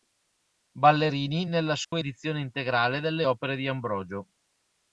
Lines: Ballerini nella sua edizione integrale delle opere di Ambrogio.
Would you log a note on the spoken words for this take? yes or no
no